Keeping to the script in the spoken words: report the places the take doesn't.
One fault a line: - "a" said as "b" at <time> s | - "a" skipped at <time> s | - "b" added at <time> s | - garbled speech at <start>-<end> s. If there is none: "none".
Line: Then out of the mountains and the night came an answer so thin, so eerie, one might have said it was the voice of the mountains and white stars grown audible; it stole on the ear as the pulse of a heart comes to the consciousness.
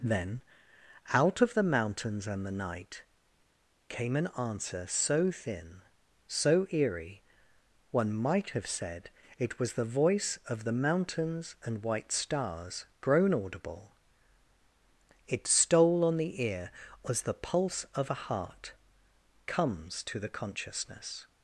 none